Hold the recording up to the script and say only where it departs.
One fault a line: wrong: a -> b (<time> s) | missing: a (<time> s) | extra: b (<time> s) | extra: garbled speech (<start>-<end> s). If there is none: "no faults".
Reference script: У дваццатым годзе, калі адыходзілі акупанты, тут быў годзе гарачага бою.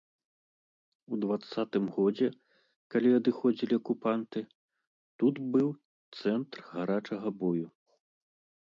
wrong: годзе -> цэнтр (6.2 s)